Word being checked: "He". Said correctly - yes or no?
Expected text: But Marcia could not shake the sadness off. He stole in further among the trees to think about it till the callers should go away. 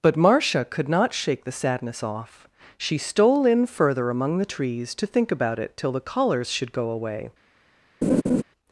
no